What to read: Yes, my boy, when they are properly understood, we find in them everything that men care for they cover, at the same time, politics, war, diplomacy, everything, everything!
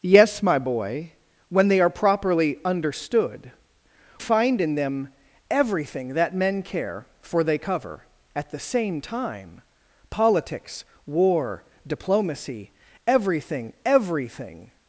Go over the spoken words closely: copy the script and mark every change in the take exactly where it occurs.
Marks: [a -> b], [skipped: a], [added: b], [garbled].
Yes, my boy, when they are properly understood, [skipped: we] find in them everything that men care for they cover, at the same time, politics, war, diplomacy, everything, everything!